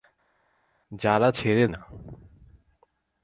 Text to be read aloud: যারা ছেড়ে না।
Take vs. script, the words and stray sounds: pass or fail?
pass